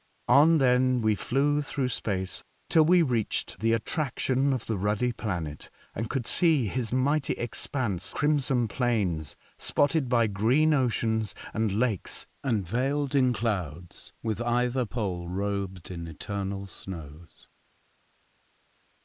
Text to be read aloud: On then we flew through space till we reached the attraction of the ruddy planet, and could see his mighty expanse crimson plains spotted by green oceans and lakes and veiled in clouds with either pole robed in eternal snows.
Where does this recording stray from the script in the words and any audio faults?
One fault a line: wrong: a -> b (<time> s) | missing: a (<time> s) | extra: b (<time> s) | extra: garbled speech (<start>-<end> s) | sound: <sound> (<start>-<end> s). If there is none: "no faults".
no faults